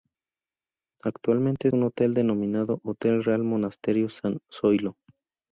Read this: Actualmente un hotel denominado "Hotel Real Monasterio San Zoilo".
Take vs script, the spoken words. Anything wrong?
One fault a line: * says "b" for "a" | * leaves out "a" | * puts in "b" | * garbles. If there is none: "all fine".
all fine